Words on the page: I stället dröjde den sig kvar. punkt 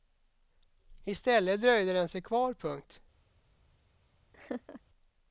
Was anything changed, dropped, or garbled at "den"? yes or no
no